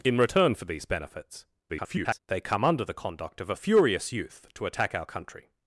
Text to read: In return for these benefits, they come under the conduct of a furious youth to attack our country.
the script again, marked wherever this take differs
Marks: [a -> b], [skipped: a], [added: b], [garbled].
In return for these benefits, [garbled] they come under the conduct of a furious youth to attack our country.